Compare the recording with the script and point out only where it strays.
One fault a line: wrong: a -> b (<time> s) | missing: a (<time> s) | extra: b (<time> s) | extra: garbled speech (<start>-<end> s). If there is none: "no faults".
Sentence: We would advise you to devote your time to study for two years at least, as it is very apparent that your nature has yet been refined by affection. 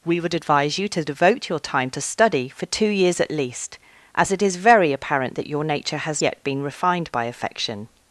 no faults